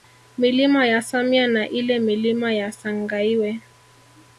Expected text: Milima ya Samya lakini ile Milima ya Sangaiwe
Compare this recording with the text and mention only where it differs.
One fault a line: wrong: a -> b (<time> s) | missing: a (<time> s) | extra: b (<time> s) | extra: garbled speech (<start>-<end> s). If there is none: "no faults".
wrong: lakini -> na (1.5 s)